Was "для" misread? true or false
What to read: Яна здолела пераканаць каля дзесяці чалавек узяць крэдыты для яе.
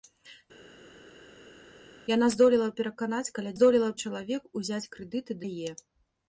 true